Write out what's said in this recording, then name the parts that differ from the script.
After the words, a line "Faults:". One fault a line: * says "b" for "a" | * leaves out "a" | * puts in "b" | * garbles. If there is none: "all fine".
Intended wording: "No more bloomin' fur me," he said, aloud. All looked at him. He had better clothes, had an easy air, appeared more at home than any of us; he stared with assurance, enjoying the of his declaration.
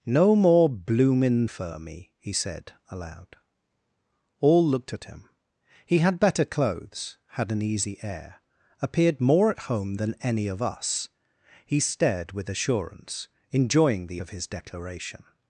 "No more bloomin' fur me," he said, aloud. All looked at him. He had better clothes, had an easy air, appeared more at home than any of us; he stared with assurance, enjoying the of his declaration.
Faults:
all fine